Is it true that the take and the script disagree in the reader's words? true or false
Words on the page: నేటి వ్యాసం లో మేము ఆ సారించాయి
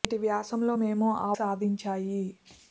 false